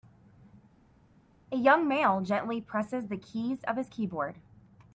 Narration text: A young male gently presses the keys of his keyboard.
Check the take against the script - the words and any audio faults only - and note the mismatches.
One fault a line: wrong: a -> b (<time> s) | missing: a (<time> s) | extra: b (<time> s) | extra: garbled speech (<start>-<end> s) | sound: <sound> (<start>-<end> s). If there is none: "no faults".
no faults